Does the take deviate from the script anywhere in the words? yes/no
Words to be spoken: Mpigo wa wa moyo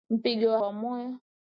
no